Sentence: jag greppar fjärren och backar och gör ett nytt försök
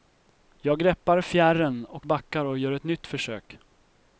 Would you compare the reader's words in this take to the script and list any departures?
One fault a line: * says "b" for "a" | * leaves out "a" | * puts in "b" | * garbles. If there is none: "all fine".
all fine